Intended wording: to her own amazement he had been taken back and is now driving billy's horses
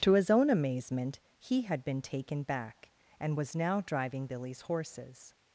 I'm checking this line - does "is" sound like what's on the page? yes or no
no